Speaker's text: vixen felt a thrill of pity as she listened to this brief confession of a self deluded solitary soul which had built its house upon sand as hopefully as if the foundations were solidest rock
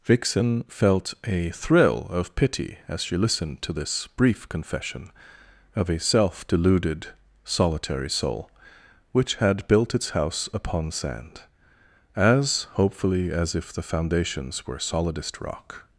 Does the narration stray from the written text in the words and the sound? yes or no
no